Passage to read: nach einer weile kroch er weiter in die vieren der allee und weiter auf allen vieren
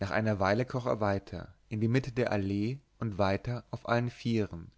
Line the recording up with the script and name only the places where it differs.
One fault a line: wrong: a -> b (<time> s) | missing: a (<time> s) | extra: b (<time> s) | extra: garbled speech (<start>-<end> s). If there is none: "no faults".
wrong: vieren -> mitte (1.9 s)